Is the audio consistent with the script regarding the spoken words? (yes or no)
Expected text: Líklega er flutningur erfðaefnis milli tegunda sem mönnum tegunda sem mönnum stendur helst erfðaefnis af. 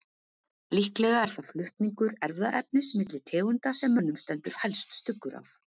no